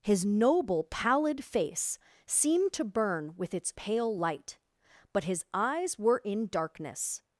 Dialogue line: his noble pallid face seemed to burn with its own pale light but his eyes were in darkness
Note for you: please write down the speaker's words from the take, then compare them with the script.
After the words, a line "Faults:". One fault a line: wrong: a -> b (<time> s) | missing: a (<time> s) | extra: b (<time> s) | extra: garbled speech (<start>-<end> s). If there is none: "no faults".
his noble pallid face seemed to burn with its pale light but his eyes were in darkness
Faults:
missing: own (3.7 s)